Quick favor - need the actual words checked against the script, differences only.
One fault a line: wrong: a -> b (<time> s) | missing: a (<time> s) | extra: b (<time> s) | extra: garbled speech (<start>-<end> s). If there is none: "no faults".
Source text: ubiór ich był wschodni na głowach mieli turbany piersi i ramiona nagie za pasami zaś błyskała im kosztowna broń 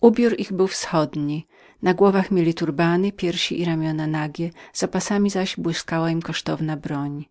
no faults